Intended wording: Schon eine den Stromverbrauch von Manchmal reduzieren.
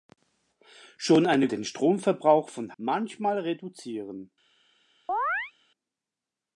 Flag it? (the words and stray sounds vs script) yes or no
yes